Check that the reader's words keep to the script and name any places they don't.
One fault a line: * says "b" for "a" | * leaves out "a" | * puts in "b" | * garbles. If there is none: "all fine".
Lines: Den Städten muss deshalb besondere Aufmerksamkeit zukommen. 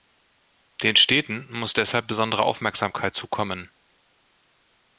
all fine